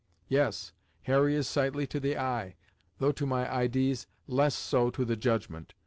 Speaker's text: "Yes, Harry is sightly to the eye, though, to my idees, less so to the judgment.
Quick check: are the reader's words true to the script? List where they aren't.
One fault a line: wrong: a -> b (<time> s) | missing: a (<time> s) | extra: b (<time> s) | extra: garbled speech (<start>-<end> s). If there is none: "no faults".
no faults